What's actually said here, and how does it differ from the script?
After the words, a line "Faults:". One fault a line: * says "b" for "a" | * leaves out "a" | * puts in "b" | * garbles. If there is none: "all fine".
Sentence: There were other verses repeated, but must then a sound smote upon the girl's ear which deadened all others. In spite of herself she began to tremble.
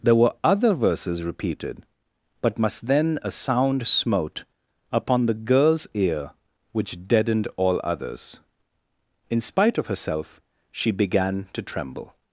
There were other verses repeated, but must then a sound smote upon the girl's ear which deadened all others. In spite of herself she began to tremble.
Faults:
all fine